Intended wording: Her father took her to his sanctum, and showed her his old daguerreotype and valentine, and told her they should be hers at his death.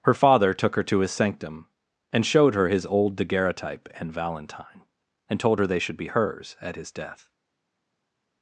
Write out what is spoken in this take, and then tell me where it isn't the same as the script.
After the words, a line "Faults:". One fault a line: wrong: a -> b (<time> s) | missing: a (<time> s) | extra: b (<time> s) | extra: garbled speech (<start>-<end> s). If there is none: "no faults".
Her father took her to his sanctum, and showed her his old daguerreotype and valentine, and told her they should be hers at his death.
Faults:
no faults